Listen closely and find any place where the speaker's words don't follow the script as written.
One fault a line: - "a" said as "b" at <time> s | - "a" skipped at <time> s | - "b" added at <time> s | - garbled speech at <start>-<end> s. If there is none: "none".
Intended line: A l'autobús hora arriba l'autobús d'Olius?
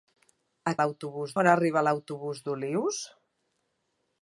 none